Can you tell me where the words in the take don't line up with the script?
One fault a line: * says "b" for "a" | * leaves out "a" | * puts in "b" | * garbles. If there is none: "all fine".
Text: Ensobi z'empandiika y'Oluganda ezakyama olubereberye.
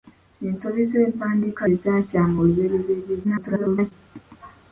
* leaves out "y'Oluganda"
* garbles